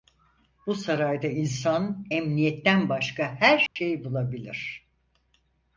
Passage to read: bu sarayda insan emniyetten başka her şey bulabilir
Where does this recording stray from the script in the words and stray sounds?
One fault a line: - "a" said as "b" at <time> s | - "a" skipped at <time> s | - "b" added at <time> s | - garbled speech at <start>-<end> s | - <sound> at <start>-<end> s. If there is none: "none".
- dropout at 3.7-3.8 s